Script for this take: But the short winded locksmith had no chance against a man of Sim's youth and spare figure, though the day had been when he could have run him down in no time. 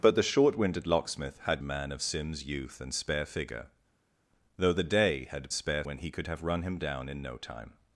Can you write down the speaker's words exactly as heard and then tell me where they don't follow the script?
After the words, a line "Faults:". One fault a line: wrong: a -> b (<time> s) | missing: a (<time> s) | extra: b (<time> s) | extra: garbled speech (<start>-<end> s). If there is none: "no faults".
But the short winded locksmith had a man of Sim's youth and spare figure, though the day had spare when he could have run him down in no time.
Faults:
missing: no chance against (1.6 s)
wrong: been -> spare (5.5 s)